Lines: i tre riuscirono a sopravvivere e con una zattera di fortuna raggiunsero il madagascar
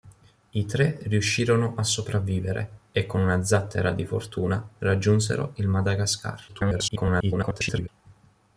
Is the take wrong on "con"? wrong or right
right